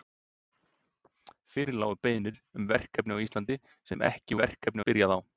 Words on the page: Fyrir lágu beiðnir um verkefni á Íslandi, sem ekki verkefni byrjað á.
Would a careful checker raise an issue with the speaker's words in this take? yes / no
no